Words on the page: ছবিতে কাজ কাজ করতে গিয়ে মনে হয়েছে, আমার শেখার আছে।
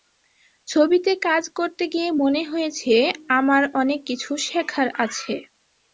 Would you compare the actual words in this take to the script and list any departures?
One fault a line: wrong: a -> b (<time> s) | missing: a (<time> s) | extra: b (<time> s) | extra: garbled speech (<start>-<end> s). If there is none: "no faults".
missing: কাজ (1.4 s)
extra: অনেক কিছু (3.7 s)